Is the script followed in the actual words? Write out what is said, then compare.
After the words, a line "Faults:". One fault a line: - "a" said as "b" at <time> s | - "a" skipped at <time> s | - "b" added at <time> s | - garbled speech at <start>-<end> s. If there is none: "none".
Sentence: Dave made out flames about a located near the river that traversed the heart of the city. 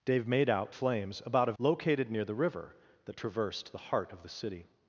Dave made out flames about a located near the river that traversed the heart of the city.
Faults:
none